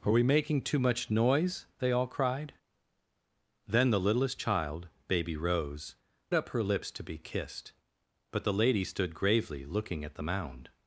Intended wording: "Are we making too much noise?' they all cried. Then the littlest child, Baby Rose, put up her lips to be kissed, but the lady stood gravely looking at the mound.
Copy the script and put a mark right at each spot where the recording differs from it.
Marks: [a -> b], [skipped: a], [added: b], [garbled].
"Are we making too much noise?' they all cried. Then the littlest child, Baby Rose, [skipped: put] up her lips to be kissed, but the lady stood gravely looking at the mound.